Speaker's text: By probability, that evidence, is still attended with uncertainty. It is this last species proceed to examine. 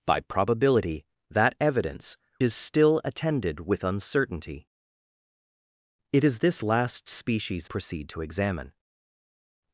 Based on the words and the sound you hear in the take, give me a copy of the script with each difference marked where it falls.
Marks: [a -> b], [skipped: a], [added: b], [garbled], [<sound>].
By probability, that evidence, is still attended with uncertainty. It is this last species proceed to examine.